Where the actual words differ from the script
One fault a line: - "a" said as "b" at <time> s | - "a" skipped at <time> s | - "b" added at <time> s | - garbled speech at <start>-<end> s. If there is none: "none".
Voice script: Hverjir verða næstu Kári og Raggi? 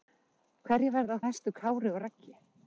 none